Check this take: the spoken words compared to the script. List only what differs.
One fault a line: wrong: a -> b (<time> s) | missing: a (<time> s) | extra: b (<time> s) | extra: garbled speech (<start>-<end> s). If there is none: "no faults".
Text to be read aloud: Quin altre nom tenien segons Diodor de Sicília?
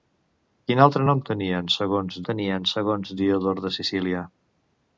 extra: tenien segons (2.3 s)